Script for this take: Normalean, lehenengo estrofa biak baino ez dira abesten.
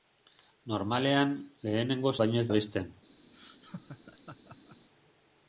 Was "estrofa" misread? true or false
true